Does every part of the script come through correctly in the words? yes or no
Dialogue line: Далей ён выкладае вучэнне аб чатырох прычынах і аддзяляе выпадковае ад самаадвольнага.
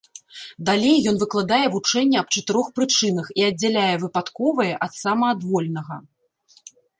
yes